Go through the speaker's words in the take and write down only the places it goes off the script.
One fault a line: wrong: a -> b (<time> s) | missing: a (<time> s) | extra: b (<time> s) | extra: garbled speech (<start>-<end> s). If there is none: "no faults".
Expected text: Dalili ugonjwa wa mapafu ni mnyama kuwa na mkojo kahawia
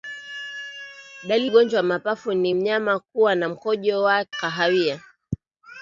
no faults